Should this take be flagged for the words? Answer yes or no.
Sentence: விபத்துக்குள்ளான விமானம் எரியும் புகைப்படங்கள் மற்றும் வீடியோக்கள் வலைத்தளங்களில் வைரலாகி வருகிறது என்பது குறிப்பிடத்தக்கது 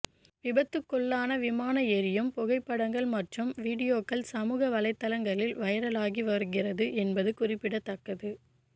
yes